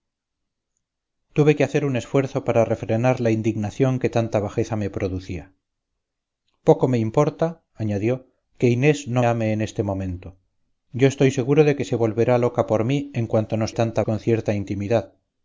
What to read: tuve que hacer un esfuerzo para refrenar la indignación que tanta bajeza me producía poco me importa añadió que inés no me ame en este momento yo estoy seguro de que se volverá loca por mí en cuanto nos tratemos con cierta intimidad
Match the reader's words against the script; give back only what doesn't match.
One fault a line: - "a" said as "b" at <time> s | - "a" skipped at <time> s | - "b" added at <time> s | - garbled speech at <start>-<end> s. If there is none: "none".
- "me" skipped at 9.2 s
- "tratemos" said as "tanta" at 13.7 s